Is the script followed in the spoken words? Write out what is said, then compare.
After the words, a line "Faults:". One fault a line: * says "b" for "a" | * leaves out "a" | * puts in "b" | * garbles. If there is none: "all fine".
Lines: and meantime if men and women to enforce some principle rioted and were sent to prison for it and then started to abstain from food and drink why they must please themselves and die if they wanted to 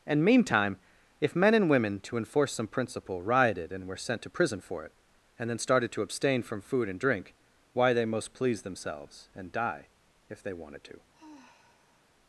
and meantime if men and women to enforce some principle rioted and were sent to prison for it and then started to abstain from food and drink why they most please themselves and die if they wanted to
Faults:
* says "most" for "must"